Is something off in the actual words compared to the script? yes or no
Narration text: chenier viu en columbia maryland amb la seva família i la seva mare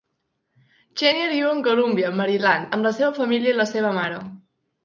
no